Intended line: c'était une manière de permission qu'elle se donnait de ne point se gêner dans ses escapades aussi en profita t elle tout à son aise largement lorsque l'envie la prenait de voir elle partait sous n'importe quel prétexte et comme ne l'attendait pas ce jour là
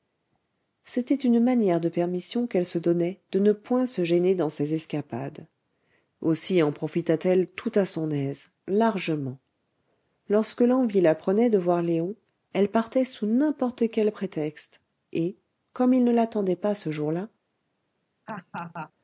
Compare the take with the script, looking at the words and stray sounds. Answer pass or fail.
fail